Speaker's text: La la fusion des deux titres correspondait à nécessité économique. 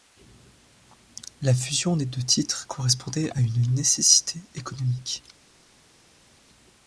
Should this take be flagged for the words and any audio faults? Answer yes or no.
yes